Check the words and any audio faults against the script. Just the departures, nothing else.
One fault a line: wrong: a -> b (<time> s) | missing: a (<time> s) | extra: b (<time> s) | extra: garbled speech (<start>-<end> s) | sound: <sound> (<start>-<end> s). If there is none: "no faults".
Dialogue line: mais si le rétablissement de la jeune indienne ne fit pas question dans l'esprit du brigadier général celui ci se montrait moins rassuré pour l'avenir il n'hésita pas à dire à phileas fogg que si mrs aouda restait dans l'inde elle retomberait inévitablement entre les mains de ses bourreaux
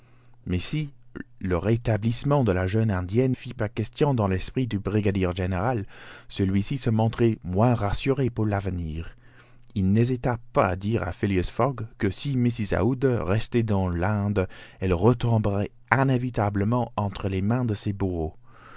missing: ne (3.4 s)